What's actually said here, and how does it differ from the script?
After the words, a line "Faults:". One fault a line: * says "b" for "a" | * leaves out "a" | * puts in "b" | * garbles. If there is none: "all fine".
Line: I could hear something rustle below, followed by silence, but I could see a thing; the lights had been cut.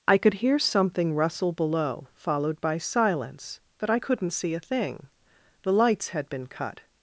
I could hear something rustle below, followed by silence, but I couldn't see a thing; the lights had been cut.
Faults:
* says "couldn't" for "could"